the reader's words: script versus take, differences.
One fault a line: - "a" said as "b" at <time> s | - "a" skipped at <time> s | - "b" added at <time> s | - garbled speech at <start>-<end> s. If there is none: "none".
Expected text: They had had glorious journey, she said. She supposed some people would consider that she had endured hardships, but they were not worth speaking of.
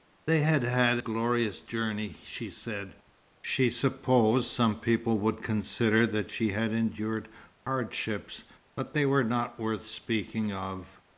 none